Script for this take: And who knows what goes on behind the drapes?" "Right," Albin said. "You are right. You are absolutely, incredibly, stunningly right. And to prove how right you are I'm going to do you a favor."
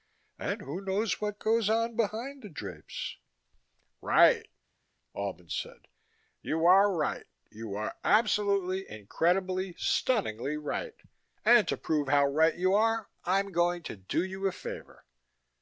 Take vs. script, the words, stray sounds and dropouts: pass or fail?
pass